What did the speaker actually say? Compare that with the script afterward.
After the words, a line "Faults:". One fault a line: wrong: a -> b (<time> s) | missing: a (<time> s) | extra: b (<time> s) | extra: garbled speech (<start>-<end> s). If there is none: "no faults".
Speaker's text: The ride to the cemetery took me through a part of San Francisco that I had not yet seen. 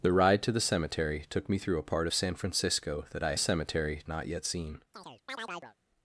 The ride to the cemetery took me through a part of San Francisco that I cemetery not yet seen.
Faults:
wrong: had -> cemetery (3.4 s)